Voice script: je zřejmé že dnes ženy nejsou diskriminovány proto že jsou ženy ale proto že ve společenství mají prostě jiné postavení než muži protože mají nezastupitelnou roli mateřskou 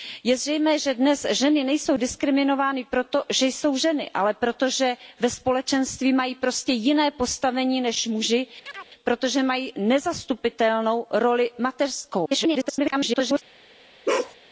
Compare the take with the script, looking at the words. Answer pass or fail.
fail